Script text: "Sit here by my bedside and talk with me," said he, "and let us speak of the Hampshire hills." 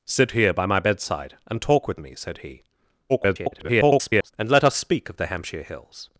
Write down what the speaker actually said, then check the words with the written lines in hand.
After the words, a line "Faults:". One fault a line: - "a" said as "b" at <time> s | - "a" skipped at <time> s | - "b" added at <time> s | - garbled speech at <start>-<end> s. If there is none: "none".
"Sit here by my bedside and talk with me," said he, [garbled] "and let us speak of the Hampshire hills."
Faults:
- garbled speech at 3.1-4.3 s